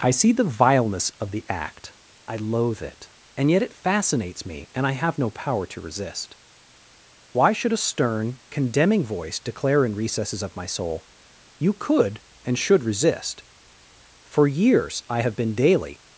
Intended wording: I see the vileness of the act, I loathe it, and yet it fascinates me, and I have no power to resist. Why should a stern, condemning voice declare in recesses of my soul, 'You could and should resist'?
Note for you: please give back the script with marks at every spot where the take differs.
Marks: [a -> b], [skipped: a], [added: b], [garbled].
I see the vileness of the act, I loathe it, and yet it fascinates me, and I have no power to resist. Why should a stern, condemning voice declare in recesses of my soul, 'You could and should resist'? [added: For years I have been daily]